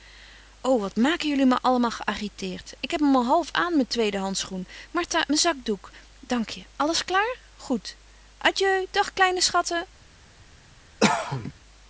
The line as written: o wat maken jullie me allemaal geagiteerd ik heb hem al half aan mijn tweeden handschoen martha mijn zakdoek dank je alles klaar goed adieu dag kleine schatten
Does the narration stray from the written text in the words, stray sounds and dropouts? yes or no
yes